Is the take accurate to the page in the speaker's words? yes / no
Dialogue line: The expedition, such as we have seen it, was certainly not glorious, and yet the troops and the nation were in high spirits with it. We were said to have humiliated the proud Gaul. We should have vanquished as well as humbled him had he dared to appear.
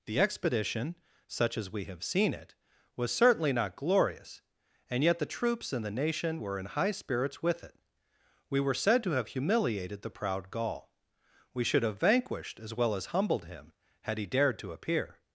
yes